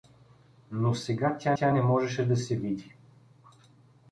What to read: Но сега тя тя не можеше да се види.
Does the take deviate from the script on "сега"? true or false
false